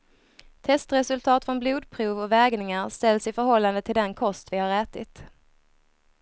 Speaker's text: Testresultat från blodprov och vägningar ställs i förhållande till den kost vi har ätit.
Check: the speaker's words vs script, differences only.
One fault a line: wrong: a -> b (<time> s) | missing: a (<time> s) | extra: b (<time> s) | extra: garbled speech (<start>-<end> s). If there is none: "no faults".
no faults